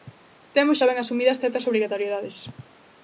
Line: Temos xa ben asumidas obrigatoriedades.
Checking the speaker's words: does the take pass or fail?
fail